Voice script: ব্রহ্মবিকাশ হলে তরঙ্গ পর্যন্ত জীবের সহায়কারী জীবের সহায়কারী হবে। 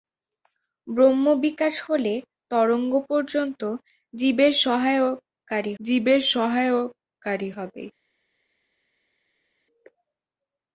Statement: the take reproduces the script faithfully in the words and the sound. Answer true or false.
true